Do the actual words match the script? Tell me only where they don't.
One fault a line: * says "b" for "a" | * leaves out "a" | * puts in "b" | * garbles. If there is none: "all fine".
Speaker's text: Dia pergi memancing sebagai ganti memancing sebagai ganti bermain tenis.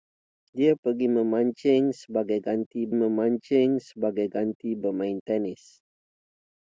all fine